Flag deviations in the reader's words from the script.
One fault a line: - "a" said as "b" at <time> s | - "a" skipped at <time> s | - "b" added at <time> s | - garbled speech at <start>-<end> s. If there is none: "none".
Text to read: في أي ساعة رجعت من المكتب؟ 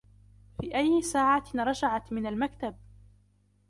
none